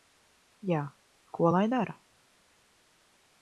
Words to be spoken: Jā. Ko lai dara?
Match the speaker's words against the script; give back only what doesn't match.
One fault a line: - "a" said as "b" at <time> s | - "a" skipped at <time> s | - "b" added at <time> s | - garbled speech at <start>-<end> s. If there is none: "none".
none